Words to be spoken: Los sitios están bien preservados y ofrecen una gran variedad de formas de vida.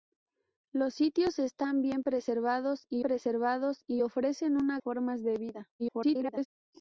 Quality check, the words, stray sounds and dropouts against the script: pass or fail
fail